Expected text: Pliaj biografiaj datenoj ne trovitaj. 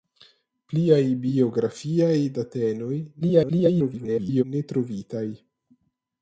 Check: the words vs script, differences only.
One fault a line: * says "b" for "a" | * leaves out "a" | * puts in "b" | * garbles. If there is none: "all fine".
* garbles